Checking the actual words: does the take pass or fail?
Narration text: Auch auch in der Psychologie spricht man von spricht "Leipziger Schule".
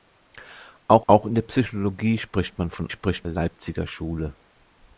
pass